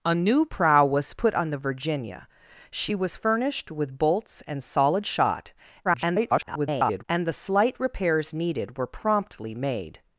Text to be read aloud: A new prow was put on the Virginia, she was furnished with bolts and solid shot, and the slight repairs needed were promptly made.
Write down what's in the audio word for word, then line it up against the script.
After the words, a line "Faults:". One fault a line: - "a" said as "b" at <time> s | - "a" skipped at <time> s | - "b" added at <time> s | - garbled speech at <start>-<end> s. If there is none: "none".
A new prow was put on the Virginia, she was furnished with bolts and solid shot, [garbled] and the slight repairs needed were promptly made.
Faults:
- garbled speech at 5.8-7.0 s